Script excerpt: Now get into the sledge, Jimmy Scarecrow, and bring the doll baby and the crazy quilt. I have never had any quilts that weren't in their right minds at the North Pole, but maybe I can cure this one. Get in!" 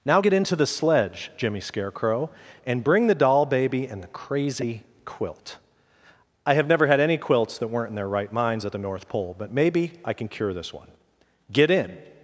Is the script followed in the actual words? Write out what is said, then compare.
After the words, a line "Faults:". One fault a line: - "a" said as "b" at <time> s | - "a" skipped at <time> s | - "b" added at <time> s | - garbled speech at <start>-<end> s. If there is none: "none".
Now get into the sledge, Jimmy Scarecrow, and bring the doll baby and the crazy quilt. I have never had any quilts that weren't in their right minds at the North Pole, but maybe I can cure this one. Get in!"
Faults:
none